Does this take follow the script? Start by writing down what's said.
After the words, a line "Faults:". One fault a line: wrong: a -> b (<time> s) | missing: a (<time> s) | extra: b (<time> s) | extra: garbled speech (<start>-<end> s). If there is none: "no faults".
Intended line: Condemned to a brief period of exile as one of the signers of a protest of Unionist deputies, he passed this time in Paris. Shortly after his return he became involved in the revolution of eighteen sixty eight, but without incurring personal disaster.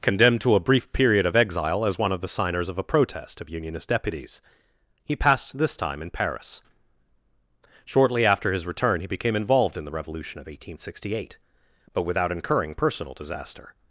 Condemned to a brief period of exile as one of the signers of a protest of Unionist deputies, he passed this time in Paris. Shortly after his return he became involved in the revolution of eighteen sixty eight, but without incurring personal disaster.
Faults:
no faults